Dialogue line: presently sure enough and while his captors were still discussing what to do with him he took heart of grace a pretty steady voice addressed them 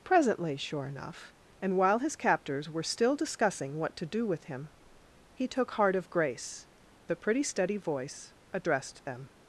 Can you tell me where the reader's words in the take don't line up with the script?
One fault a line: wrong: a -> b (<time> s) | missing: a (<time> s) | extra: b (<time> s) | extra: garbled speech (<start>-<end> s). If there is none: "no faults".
no faults